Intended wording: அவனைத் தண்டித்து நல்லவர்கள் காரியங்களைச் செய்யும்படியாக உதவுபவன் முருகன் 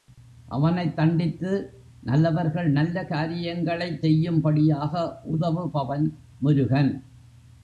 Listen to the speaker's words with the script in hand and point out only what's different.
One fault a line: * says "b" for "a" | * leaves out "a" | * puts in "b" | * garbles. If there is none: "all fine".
* puts in "நல்ல"